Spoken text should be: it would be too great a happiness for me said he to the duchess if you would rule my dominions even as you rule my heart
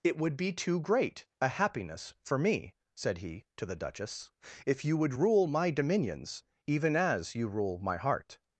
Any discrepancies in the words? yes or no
no